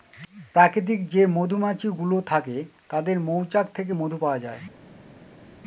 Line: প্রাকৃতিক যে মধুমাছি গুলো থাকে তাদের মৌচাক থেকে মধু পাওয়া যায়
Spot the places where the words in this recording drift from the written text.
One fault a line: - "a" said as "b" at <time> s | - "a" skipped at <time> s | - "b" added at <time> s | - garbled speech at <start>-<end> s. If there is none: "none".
none